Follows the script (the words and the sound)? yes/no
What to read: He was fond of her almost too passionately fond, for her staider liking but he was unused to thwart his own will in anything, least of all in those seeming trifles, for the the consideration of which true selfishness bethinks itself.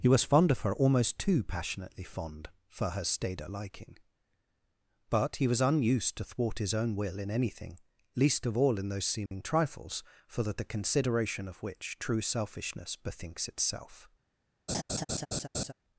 no